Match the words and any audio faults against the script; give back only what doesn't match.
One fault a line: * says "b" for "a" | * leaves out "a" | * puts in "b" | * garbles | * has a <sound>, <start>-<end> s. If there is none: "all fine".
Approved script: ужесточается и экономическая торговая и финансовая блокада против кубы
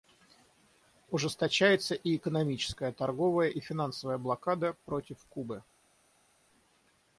all fine